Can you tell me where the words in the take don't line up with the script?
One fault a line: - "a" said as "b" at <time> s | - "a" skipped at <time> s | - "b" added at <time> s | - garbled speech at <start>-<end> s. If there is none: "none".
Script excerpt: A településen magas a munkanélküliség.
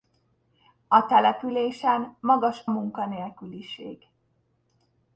- "a" skipped at 2.6 s